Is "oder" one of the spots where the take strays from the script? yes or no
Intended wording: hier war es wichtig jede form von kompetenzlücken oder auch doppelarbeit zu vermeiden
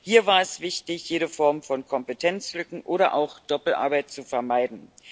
no